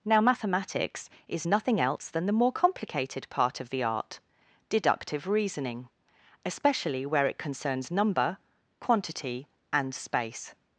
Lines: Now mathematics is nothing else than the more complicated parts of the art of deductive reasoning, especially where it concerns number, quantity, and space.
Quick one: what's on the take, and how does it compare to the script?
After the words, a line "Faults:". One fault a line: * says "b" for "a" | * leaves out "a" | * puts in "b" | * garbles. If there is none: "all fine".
Now mathematics is nothing else than the more complicated part of the art deductive reasoning, especially where it concerns number, quantity, and space.
Faults:
* says "part" for "parts"
* leaves out "of"